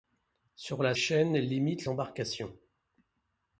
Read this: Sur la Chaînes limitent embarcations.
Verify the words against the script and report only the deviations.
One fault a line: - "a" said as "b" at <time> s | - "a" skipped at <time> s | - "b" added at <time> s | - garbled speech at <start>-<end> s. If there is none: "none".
none